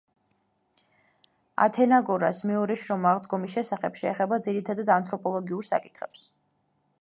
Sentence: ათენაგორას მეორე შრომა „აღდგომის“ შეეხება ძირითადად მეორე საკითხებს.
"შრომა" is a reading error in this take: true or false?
false